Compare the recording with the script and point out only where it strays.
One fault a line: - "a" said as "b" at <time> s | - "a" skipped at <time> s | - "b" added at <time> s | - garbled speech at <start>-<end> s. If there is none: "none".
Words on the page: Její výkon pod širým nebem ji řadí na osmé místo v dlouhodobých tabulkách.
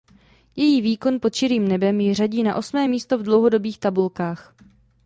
none